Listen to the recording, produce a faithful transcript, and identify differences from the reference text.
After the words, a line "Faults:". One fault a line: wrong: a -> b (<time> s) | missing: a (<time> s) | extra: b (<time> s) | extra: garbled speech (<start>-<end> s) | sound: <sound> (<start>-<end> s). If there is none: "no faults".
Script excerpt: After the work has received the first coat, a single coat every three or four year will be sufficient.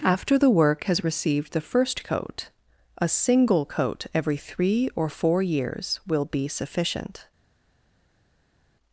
After the work has received the first coat, a single coat every three or four years will be sufficient.
Faults:
wrong: year -> years (5.4 s)